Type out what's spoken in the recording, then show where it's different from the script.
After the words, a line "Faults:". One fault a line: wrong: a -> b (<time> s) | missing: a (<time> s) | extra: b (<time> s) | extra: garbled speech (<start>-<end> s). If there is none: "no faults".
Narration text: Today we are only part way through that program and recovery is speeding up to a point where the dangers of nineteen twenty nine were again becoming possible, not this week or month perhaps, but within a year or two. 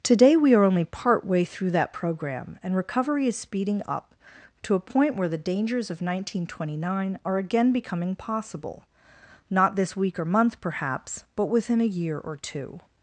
Today we are only part way through that program and recovery is speeding up to a point where the dangers of nineteen twenty nine are again becoming possible, not this week or month perhaps, but within a year or two.
Faults:
wrong: were -> are (7.2 s)